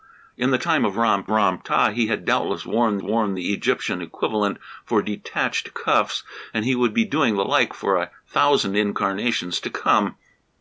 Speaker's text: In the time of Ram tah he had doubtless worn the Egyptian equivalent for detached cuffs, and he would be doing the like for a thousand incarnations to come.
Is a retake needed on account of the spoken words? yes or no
yes